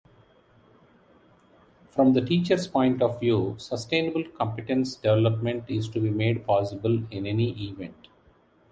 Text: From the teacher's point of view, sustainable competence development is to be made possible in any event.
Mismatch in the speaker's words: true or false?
false